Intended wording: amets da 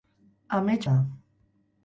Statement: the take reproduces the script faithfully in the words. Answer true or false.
true